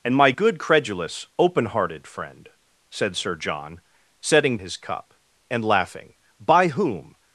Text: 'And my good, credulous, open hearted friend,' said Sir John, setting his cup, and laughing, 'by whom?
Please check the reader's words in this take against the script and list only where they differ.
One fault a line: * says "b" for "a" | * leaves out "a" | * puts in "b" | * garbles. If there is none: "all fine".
all fine